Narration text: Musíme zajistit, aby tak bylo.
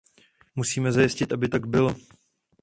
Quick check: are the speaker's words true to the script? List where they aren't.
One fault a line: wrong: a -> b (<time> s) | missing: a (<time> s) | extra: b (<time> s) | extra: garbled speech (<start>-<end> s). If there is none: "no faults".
no faults